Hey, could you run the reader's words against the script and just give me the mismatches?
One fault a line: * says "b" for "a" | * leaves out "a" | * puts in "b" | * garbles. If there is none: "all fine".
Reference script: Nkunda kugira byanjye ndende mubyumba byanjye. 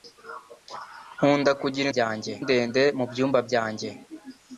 all fine